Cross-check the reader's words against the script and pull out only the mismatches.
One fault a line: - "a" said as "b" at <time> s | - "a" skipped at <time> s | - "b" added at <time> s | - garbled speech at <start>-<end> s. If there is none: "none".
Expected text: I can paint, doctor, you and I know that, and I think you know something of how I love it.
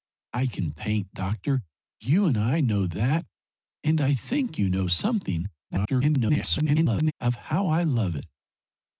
- garbled speech at 5.7-7.1 s